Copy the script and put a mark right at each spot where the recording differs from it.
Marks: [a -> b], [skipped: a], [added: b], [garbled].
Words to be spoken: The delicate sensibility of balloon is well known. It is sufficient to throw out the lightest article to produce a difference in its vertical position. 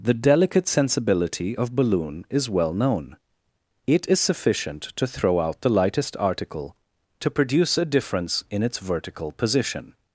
The delicate sensibility of balloon is well known. It is sufficient to throw out the lightest article to produce a difference in its vertical position.